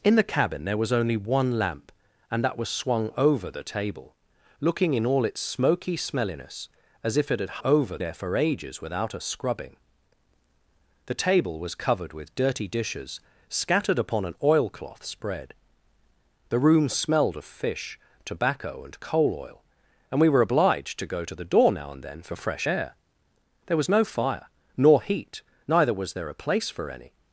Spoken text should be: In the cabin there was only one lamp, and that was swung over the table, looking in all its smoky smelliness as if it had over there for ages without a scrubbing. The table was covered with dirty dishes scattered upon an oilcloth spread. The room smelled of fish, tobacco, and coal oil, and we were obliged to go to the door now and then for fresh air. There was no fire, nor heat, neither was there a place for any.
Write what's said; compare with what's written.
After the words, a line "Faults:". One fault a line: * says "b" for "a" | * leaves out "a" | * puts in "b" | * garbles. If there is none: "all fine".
In the cabin there was only one lamp, and that was swung over the table, looking in all its smoky smelliness as if it had over there for ages without a scrubbing. The table was covered with dirty dishes scattered upon an oilcloth spread. The room smelled of fish, tobacco, and coal oil, and we were obliged to go to the door now and then for fresh air. There was no fire, nor heat, neither was there a place for any.
Faults:
all fine